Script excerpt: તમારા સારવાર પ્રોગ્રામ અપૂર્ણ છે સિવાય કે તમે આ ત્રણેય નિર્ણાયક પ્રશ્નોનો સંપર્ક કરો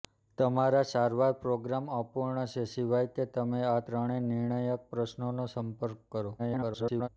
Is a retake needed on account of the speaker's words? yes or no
yes